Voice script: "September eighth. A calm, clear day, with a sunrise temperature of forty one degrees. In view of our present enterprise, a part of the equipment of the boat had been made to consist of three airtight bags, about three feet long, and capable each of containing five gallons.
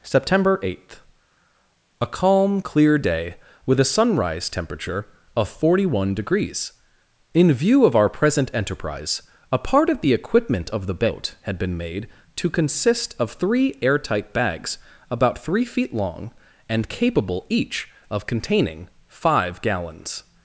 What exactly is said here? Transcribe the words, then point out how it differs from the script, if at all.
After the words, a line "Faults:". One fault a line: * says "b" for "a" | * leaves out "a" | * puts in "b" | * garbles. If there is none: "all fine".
"September eighth. A calm, clear day, with a sunrise temperature of forty one degrees. In view of our present enterprise, a part of the equipment of the boat had been made to consist of three airtight bags, about three feet long, and capable each of containing five gallons.
Faults:
all fine